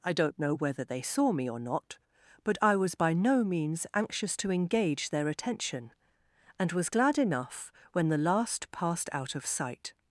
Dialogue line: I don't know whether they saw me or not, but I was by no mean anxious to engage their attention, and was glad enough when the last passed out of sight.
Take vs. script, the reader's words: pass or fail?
fail